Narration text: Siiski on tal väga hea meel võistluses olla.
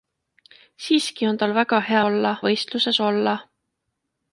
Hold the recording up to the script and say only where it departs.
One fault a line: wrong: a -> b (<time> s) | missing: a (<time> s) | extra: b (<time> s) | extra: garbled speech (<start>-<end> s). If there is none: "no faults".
wrong: meel -> olla (2.1 s)